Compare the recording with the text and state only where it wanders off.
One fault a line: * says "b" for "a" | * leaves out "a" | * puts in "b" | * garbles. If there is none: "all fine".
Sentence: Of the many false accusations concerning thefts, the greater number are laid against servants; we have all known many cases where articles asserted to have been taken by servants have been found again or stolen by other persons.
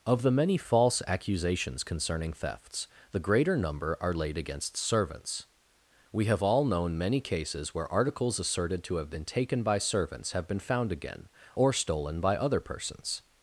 all fine